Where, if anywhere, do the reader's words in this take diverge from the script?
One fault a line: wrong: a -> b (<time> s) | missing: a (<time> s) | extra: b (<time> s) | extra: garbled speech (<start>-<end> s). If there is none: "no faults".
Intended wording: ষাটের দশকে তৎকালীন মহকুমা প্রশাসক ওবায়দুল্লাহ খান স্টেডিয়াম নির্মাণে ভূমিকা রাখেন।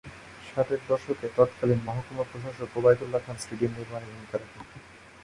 no faults